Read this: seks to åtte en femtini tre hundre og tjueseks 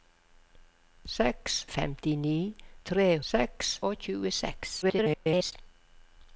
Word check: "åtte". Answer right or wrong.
wrong